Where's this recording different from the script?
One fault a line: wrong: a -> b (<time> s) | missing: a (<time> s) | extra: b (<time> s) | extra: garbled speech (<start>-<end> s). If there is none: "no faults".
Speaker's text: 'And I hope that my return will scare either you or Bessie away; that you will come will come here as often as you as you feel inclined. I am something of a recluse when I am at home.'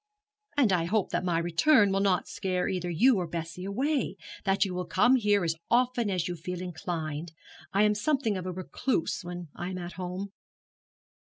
extra: not (2.0 s)
missing: will come (5.2 s)
missing: as you (6.4 s)